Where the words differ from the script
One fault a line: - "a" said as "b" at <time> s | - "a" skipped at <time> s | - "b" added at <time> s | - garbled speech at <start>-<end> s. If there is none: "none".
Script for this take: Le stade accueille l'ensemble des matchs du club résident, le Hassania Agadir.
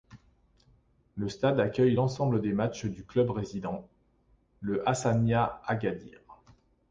none